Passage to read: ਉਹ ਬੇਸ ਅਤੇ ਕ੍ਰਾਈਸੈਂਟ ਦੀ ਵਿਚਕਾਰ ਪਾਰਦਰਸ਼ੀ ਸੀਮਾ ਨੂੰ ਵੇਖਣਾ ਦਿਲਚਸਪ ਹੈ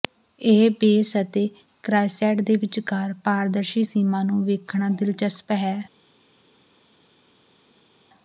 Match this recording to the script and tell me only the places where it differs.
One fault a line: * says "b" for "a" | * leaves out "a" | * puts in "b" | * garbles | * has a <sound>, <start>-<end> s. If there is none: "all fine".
* says "ਇਹ" for "ਉਹ"
* says "ਦੇ" for "ਦੀ"